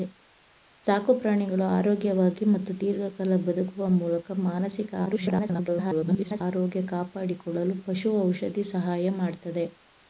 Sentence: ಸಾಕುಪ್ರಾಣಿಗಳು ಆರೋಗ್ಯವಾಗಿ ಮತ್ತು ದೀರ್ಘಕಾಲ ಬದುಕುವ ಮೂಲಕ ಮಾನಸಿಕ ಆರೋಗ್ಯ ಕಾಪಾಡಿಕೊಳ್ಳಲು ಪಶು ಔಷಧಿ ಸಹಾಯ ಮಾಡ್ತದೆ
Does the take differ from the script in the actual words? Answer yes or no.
yes